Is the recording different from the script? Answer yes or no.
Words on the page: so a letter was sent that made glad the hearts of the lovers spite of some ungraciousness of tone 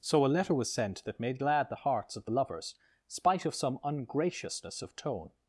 no